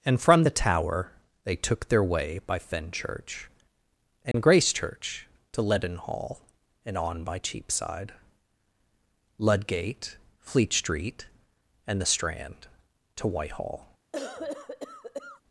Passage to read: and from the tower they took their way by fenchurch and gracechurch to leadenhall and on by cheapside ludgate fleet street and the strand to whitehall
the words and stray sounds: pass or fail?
fail